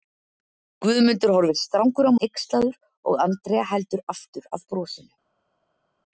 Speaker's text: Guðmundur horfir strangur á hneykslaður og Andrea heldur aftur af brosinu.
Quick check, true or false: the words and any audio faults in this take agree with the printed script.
true